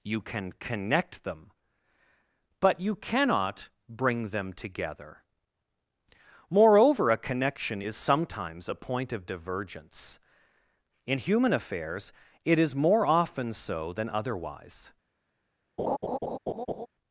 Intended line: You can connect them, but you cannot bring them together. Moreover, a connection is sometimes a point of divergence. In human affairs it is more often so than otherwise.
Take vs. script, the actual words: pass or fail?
pass